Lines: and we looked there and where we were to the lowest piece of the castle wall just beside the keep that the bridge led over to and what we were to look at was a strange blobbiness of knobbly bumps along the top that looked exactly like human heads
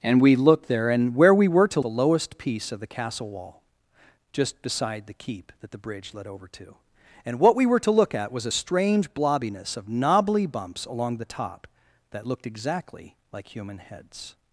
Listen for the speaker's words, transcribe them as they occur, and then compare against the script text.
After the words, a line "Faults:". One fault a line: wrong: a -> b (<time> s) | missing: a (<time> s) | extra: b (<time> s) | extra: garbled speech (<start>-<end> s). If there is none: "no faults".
and we looked there and where we were to the lowest piece of the castle wall just beside the keep that the bridge led over to and what we were to look at was a strange blobbiness of knobbly bumps along the top that looked exactly like human heads
Faults:
no faults